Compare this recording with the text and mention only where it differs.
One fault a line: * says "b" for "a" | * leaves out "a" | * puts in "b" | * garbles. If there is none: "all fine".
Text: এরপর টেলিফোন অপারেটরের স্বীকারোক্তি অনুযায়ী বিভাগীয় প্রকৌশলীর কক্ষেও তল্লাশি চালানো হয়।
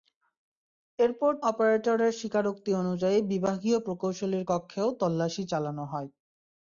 * leaves out "টেলিফোন"